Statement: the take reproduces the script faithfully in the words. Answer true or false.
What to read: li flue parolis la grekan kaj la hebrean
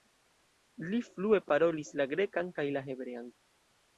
true